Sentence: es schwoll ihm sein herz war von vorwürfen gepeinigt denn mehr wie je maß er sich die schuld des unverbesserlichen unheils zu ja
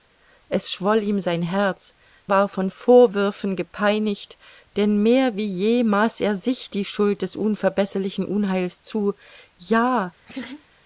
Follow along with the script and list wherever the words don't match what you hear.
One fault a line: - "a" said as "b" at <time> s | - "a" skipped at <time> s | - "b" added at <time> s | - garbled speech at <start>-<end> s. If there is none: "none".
none